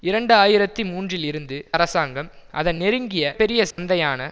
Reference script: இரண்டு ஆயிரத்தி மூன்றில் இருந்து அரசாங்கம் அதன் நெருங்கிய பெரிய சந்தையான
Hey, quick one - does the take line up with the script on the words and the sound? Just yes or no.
no